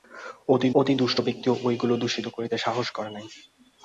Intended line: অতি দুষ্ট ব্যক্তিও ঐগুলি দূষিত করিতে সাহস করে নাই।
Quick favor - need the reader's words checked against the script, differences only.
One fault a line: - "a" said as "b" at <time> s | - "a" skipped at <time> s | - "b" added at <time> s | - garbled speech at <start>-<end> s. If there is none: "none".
- "অতি" added at 0.8 s